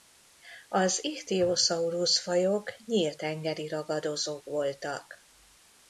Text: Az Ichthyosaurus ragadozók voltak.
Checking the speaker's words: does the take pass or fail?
fail